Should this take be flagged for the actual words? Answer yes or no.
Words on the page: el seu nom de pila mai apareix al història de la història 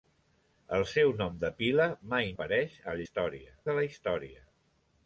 no